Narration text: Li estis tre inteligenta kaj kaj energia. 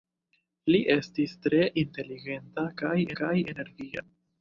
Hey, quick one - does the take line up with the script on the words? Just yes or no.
yes